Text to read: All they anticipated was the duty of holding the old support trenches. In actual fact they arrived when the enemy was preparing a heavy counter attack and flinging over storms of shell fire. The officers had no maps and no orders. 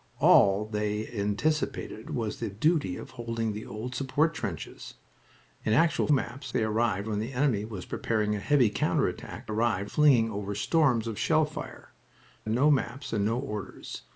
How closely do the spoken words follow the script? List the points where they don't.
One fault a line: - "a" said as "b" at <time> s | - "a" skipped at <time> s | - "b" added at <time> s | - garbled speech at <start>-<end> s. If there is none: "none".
- "fact" said as "maps" at 6.1 s
- "and" said as "arrived" at 9.4 s
- "The officers had" skipped at 12.0 s